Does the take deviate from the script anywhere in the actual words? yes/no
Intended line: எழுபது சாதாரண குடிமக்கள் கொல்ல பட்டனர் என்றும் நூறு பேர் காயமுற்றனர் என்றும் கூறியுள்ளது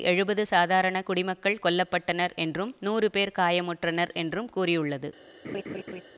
no